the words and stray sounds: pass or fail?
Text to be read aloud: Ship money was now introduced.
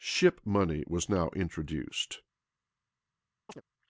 fail